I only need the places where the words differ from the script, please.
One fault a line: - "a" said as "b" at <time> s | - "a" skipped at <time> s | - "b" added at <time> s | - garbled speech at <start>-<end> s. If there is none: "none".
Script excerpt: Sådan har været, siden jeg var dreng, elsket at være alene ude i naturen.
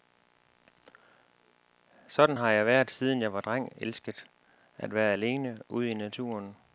- "jeg" added at 2.5 s